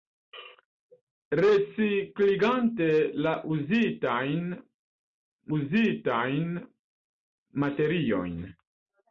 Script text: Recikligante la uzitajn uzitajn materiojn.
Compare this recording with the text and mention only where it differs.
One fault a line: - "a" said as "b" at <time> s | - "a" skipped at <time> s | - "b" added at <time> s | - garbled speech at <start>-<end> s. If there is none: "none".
none